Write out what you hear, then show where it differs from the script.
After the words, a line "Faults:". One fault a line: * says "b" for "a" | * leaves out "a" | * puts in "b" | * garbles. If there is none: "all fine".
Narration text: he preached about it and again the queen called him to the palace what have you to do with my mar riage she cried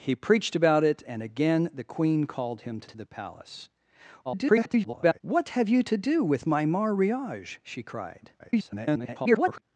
he preached about it and again the queen called him to to the palace [garbled] what have you to do with my mar riage she cried [garbled]
Faults:
* puts in "to"
* garbles
* garbles